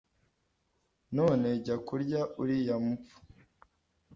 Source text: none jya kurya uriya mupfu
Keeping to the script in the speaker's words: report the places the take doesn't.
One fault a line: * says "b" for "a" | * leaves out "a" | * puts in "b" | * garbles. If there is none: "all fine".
all fine